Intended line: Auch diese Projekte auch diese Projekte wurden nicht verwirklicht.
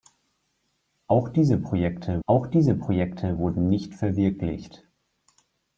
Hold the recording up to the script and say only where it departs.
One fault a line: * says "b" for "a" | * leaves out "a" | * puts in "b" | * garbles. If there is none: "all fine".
all fine